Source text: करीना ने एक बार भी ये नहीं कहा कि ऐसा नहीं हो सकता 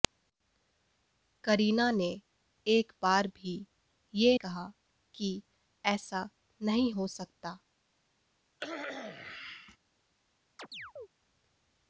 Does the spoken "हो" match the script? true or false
true